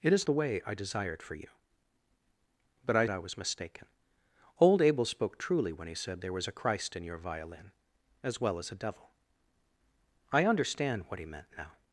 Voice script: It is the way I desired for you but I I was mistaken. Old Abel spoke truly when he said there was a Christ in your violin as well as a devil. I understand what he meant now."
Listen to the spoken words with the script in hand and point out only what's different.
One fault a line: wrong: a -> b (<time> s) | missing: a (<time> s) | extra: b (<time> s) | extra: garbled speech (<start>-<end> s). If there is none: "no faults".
no faults